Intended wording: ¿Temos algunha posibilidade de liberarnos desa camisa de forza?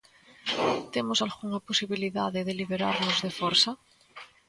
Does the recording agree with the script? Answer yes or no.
no